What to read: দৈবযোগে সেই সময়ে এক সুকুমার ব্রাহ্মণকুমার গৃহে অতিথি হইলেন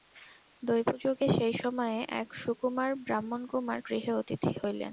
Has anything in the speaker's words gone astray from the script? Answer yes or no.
no